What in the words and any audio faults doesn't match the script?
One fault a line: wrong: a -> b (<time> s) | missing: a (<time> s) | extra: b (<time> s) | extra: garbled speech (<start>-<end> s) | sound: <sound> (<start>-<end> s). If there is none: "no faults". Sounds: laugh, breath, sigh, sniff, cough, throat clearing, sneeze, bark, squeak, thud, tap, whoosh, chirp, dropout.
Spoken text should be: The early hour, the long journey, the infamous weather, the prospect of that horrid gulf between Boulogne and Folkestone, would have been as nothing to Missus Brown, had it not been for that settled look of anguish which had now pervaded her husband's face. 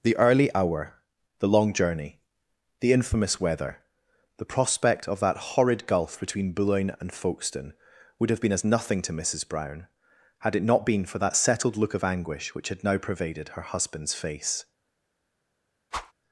sound: whoosh (15.9-16.1 s)